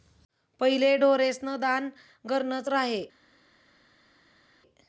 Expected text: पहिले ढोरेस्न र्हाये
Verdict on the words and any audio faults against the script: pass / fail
fail